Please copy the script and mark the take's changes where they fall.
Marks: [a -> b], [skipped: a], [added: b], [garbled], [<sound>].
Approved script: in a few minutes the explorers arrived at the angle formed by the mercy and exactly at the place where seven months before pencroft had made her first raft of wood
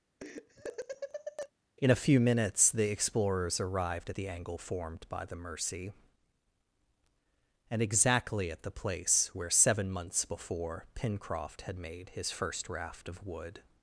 [laugh] in a few minutes the explorers arrived at the angle formed by the mercy and exactly at the place where seven months before pencroft had made [her -> his] first raft of wood